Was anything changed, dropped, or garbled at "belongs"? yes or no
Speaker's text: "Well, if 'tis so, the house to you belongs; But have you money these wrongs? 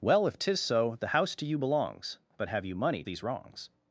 no